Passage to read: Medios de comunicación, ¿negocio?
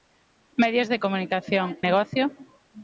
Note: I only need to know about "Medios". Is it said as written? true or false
true